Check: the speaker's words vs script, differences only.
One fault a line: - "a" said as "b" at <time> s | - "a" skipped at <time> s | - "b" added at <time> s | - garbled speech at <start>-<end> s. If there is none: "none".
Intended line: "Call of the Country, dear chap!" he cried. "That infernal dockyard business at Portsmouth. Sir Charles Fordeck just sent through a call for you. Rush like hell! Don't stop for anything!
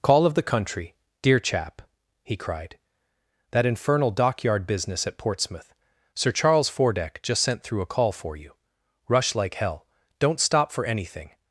none